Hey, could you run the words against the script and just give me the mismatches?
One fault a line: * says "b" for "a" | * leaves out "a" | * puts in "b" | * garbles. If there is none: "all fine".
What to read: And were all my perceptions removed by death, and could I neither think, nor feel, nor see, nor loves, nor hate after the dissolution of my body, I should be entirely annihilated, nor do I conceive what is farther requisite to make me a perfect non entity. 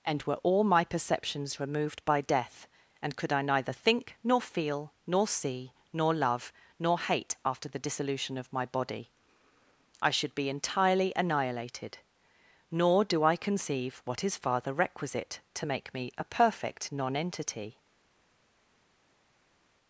* says "love" for "loves"